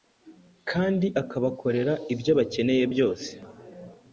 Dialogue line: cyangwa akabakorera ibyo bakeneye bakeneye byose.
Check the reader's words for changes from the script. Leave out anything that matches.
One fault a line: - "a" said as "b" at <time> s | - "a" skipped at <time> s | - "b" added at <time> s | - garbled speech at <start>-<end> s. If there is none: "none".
- "cyangwa" said as "kandi" at 0.7 s
- "bakeneye" skipped at 2.8 s